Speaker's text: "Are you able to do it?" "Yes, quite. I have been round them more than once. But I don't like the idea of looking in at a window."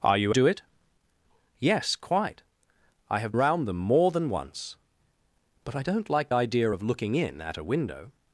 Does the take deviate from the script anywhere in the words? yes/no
yes